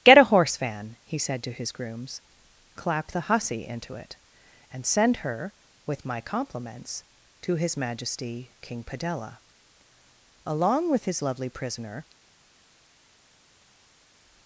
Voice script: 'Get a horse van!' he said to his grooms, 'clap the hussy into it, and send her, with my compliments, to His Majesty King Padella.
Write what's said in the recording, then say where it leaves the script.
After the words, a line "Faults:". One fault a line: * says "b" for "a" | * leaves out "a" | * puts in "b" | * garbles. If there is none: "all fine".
'Get a horse van!' he said to his grooms, 'clap the hussy into it, and send her, with my compliments, to His Majesty King Padella. Along with his lovely prisoner
Faults:
* puts in "Along with his lovely prisoner"